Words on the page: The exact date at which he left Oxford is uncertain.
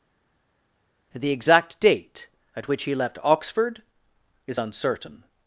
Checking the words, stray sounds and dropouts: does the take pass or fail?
pass